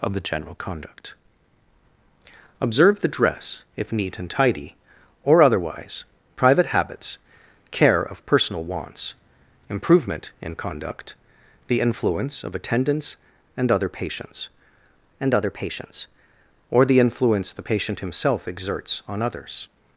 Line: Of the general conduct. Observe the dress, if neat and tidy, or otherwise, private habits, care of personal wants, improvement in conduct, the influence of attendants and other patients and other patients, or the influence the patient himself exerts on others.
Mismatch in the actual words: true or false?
false